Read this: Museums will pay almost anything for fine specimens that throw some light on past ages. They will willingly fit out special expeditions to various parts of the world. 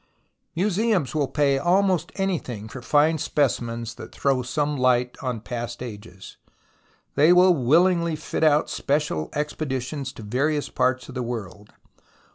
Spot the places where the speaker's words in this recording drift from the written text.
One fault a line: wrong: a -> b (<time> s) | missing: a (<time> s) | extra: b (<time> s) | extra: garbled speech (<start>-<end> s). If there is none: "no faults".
no faults